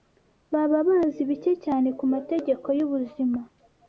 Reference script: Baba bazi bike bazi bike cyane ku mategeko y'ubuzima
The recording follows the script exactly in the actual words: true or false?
false